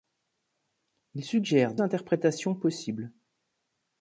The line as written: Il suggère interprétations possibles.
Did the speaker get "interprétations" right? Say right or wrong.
right